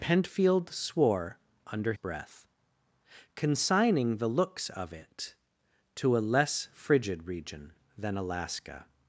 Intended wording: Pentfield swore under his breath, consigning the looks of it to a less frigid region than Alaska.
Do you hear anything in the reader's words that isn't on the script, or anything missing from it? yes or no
yes